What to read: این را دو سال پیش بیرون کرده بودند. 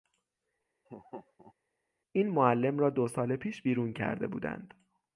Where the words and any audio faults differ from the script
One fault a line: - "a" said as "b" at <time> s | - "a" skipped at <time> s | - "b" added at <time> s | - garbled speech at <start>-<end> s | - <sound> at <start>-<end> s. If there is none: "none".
- laugh at 0.8-1.5 s
- "معلم" added at 2.3 s